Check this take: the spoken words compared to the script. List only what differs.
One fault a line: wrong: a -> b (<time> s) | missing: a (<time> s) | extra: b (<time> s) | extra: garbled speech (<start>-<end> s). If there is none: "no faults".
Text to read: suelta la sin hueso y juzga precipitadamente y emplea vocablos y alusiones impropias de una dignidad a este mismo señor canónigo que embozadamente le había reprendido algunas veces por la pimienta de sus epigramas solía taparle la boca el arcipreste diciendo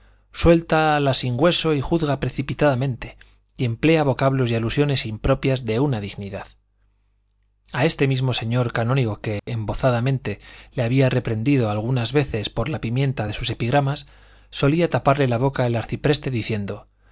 no faults